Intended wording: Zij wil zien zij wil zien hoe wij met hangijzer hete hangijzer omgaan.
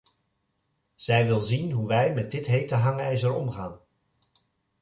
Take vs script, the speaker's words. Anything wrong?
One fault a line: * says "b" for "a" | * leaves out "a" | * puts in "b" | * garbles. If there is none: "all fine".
* leaves out "zij wil zien"
* says "dit" for "hangijzer"